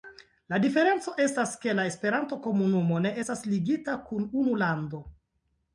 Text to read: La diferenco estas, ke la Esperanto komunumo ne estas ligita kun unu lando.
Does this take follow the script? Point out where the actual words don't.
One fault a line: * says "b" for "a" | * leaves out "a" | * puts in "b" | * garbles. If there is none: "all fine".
all fine